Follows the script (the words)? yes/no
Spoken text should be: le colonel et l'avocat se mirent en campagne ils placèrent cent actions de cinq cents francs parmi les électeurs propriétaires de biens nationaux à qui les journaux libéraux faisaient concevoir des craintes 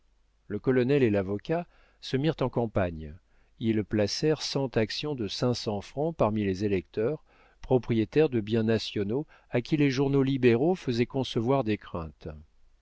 yes